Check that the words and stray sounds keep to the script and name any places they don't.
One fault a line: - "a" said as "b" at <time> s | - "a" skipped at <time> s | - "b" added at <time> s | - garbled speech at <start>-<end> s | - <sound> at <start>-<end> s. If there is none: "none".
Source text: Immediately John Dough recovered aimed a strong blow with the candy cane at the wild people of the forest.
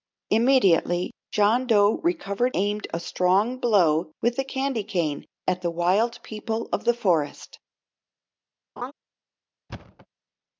- laugh at 8.8-8.9 s
- thud at 9.7-10.1 s